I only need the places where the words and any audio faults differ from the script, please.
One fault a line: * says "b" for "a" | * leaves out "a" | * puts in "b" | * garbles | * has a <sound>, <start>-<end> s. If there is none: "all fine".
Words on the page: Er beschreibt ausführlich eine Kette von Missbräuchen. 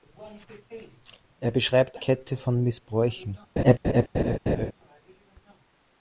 * leaves out "ausführlich eine"
* has a laugh, 3.6-4.7 s